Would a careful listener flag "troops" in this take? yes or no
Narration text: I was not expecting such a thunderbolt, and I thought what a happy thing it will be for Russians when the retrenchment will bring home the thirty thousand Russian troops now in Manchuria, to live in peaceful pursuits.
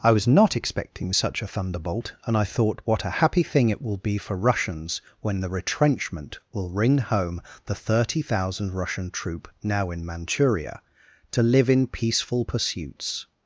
yes